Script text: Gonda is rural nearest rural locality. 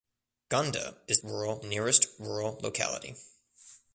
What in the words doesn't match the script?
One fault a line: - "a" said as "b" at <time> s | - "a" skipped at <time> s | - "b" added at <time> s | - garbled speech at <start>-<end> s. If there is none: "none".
none